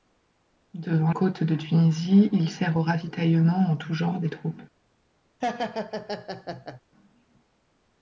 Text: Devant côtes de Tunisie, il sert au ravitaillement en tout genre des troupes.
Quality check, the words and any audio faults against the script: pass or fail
fail